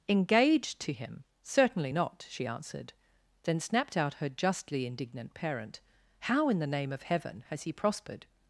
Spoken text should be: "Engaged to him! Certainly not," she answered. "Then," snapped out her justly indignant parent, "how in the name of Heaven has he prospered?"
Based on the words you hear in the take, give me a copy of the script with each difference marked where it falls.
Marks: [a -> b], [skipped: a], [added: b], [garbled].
"Engaged to him! Certainly not," she answered. "Then," snapped out her justly indignant parent, "how in the name of Heaven has he prospered?"